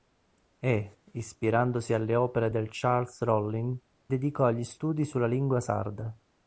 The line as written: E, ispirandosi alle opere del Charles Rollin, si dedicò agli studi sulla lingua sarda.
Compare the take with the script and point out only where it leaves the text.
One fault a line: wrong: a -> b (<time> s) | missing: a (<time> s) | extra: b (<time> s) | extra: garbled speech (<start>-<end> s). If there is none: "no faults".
missing: si (3.8 s)